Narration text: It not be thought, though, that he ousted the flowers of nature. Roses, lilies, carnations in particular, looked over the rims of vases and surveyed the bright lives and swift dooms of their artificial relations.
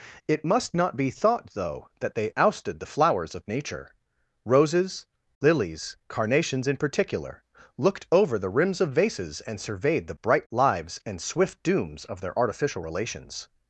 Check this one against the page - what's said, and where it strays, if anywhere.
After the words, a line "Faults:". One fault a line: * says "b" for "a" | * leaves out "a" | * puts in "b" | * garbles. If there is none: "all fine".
It must not be thought, though, that they ousted the flowers of nature. Roses, lilies, carnations in particular, looked over the rims of vases and surveyed the bright lives and swift dooms of their artificial relations.
Faults:
* puts in "must"
* says "they" for "he"